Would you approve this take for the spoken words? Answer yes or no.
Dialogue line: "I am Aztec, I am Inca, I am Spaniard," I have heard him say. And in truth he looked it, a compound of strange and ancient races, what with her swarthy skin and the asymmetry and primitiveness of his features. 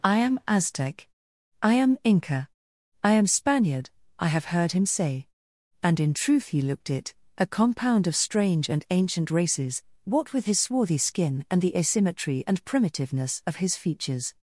no